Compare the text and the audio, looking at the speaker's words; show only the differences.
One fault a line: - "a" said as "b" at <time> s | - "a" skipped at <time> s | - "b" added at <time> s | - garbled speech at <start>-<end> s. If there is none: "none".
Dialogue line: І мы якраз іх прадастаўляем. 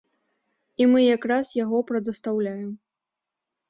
- "іх" said as "яго" at 1.6 s